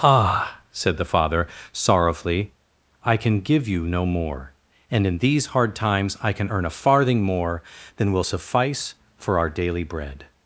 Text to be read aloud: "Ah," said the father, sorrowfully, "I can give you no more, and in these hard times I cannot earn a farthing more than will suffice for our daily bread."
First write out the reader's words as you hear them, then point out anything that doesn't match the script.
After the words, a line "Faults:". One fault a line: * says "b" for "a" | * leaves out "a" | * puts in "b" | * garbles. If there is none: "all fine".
"Ah," said the father, sorrowfully, "I can give you no more, and in these hard times I can earn a farthing more than will suffice for our daily bread."
Faults:
* says "can" for "cannot"